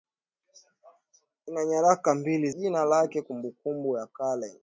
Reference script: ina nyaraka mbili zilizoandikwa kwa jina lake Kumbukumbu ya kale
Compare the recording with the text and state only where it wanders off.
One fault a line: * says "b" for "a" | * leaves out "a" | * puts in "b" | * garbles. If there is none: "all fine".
* leaves out "zilizoandikwa kwa"